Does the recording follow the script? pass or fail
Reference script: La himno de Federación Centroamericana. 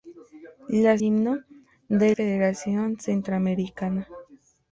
pass